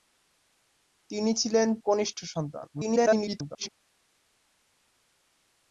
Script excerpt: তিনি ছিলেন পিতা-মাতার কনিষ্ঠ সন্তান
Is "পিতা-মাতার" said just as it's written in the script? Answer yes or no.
no